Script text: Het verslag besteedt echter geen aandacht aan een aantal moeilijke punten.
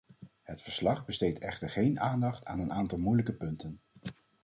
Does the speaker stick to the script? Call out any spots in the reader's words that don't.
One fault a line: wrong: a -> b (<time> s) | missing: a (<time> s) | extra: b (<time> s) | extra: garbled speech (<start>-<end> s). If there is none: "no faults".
no faults